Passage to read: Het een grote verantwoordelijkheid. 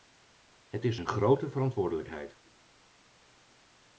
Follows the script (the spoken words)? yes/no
no